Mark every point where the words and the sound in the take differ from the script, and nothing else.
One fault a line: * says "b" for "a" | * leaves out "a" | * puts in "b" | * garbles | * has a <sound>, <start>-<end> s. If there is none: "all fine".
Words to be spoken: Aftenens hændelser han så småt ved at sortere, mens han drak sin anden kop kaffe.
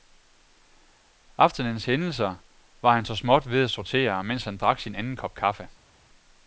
* puts in "var"